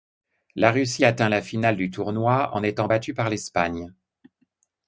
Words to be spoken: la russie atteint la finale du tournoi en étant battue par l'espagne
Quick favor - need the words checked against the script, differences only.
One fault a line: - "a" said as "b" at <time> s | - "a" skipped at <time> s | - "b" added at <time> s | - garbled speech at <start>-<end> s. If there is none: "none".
none